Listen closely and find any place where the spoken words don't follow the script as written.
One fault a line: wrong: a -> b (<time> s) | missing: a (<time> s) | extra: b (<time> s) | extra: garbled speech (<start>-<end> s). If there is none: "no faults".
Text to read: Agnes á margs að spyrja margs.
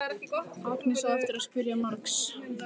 wrong: margs -> eftir (1.2 s)